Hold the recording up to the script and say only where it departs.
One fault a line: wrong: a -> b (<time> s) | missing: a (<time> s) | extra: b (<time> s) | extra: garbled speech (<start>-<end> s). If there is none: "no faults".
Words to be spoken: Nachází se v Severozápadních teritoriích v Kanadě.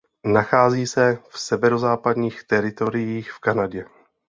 no faults